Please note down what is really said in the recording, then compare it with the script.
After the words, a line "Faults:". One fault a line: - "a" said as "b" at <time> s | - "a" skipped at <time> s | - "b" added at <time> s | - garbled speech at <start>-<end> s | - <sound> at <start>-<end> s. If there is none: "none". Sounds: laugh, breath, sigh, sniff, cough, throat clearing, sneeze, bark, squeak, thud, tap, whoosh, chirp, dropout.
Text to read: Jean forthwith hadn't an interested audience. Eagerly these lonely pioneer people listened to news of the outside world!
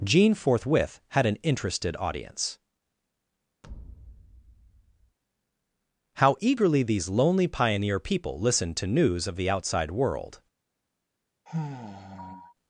Jean forthwith had an interested audience. How eagerly these lonely pioneer people listened to news of the outside world!
Faults:
- "hadn't" said as "had" at 1.1 s
- thud at 3.6-5.2 s
- "How" added at 6.2 s
- sigh at 11.5-12.5 s